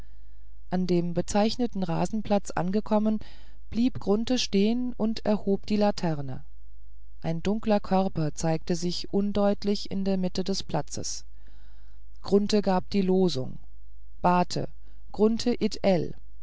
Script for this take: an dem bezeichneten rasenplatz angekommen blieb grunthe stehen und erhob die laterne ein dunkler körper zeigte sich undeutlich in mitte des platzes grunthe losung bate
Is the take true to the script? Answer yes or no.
no